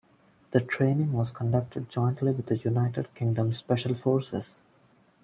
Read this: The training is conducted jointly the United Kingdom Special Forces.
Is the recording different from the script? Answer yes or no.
yes